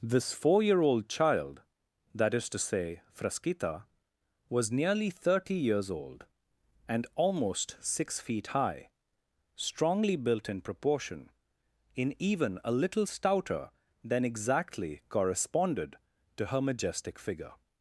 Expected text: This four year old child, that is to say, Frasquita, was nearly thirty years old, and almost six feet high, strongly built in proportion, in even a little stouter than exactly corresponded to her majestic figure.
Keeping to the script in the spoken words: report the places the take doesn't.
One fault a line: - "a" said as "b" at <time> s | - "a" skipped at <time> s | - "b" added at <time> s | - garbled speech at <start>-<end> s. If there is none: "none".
none